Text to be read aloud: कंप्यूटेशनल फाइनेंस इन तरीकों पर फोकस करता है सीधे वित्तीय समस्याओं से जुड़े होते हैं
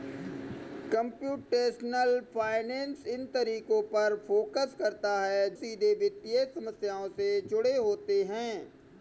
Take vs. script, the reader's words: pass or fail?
pass